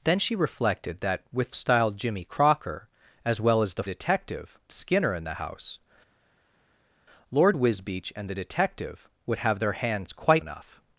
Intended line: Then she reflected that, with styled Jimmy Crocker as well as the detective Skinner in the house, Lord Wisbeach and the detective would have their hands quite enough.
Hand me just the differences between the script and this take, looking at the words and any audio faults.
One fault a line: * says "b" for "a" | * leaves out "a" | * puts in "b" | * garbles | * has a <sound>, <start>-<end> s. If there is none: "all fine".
all fine